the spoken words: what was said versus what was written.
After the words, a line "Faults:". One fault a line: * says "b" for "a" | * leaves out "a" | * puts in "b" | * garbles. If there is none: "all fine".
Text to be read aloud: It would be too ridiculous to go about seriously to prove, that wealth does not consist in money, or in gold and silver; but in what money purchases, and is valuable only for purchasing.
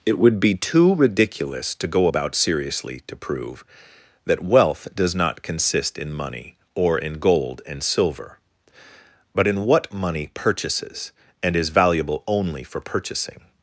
It would be too ridiculous to go about seriously to prove, that wealth does not consist in money, or in gold and silver; but in what money purchases, and is valuable only for purchasing.
Faults:
all fine